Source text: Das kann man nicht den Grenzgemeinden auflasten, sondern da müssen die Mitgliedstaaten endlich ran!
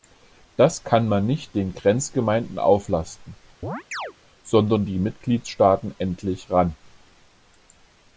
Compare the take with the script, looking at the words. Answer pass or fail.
fail